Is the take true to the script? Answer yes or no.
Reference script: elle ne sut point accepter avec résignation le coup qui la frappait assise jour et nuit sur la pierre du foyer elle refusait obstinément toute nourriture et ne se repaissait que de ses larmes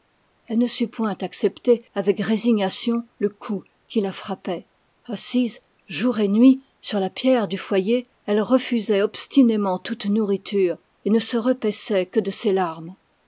yes